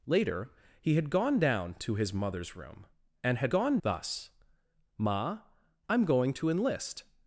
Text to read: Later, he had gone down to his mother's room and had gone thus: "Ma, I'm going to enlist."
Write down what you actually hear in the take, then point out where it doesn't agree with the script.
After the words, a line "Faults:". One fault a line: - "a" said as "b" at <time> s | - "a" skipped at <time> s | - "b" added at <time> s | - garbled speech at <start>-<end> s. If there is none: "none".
Later, he had gone down to his mother's room and had gone thus: "Ma, I'm going to enlist."
Faults:
none